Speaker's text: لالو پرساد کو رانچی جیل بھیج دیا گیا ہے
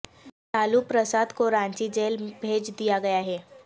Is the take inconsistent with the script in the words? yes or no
no